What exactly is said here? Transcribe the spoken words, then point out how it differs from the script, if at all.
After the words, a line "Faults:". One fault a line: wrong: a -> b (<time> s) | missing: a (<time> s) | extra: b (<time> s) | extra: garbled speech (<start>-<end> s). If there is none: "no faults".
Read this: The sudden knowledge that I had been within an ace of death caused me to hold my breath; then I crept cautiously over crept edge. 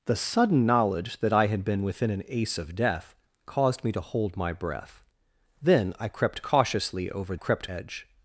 The sudden knowledge that I had been within an ace of death caused me to hold my breath; then I crept cautiously over crept edge.
Faults:
no faults